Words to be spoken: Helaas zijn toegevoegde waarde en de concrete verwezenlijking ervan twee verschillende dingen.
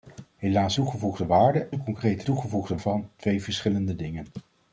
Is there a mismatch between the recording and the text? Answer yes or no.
yes